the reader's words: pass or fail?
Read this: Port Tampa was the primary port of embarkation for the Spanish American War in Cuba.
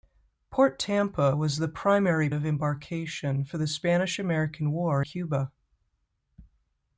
fail